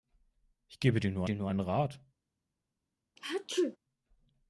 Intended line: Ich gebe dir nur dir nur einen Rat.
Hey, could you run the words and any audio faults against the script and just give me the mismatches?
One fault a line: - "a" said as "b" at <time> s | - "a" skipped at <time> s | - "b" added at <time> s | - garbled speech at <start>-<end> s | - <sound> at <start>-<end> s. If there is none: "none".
- sneeze at 3.2-3.8 s